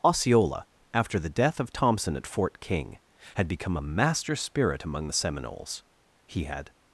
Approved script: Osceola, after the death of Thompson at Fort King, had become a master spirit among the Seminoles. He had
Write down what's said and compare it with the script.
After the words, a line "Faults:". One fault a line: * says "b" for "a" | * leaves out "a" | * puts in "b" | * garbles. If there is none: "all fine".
Osceola, after the death of Thompson at Fort King, had become a master spirit among the Seminoles. He had
Faults:
all fine